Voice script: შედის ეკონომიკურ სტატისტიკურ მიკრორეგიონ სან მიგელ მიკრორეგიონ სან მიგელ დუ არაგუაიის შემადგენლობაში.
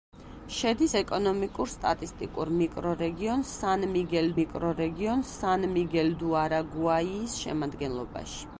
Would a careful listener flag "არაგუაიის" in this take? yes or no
no